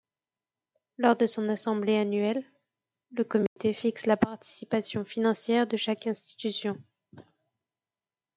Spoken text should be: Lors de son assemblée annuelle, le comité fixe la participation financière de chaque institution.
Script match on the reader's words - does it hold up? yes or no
yes